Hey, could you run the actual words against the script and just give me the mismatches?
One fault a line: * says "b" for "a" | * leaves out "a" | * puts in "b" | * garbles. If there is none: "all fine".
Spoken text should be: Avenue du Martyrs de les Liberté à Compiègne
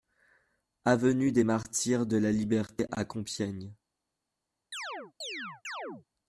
* says "des" for "du"
* says "la" for "les"